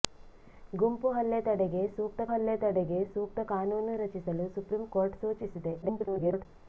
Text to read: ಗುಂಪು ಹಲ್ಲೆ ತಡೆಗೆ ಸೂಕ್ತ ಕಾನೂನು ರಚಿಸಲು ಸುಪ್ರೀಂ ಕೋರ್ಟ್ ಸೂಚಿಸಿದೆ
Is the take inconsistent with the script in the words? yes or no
yes